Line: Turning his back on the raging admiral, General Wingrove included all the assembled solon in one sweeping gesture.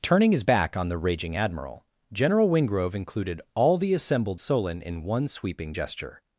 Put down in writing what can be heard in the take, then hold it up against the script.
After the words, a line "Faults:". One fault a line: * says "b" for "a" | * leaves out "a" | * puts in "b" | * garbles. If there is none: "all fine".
Turning his back on the raging admiral, General Wingrove included all the assembled solon in one sweeping gesture.
Faults:
all fine